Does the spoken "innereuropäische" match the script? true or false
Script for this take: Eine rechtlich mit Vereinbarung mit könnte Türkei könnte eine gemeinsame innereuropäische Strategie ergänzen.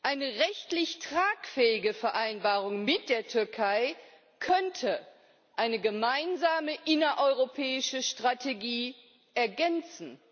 true